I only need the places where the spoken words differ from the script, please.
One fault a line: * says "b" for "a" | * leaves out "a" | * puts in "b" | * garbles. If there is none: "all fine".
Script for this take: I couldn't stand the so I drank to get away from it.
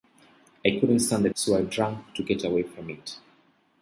all fine